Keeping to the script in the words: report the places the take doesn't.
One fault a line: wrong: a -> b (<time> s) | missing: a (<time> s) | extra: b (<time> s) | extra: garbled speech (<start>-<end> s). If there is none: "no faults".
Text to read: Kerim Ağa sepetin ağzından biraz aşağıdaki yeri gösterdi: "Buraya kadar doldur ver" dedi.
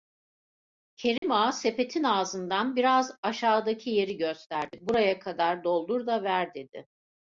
extra: da (6.1 s)